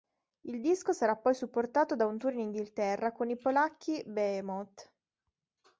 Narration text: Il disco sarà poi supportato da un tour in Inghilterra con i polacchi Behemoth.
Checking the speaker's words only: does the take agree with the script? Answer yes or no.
yes